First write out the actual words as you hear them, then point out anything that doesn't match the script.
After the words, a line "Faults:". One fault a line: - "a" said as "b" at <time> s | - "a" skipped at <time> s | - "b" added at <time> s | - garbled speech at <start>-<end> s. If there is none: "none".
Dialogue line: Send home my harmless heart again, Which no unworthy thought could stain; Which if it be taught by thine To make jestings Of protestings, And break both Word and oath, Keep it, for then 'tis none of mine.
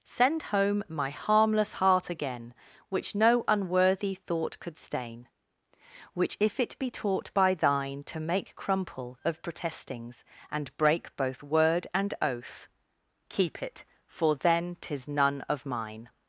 Send home my harmless heart again, Which no unworthy thought could stain; Which if it be taught by thine To make crumple Of protestings, And break both Word and oath, Keep it, for then 'tis none of mine.
Faults:
- "jestings" said as "crumple" at 8.6 s